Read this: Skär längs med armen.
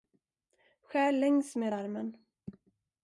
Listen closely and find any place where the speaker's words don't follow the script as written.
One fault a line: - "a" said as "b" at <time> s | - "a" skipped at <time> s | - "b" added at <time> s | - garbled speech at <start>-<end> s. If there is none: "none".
none